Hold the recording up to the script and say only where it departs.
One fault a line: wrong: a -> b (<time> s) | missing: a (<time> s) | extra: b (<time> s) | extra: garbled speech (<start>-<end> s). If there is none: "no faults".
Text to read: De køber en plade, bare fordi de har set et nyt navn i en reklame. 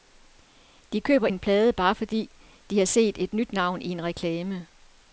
no faults